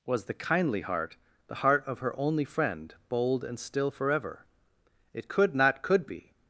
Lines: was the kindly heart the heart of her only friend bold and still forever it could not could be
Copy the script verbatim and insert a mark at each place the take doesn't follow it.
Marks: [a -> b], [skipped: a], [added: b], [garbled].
was the kindly heart the heart of her only friend bold and still forever it could not could be